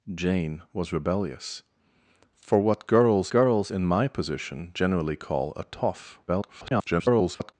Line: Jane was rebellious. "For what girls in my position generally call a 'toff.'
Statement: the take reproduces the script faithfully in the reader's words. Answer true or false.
false